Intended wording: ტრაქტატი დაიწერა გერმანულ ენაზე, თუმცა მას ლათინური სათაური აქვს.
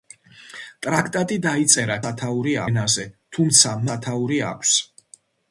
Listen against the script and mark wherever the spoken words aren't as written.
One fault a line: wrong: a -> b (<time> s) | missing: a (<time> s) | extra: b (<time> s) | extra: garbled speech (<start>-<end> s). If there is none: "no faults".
wrong: გერმანულ -> სათაური (2.0 s)
missing: მას ლათინური (3.7 s)